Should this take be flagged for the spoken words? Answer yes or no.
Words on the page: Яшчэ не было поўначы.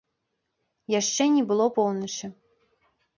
no